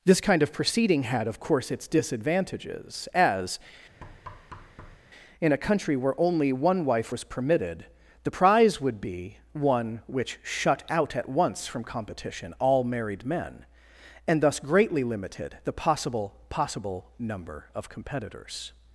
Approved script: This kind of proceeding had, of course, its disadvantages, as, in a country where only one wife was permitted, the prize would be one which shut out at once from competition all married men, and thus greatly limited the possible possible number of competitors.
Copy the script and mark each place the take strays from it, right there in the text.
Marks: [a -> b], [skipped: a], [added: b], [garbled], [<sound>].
This kind of proceeding had, of course, its disadvantages, as, [thud] in a country where only one wife was permitted, the prize would be one which shut out at once from competition all married men, and thus greatly limited the possible possible number of competitors.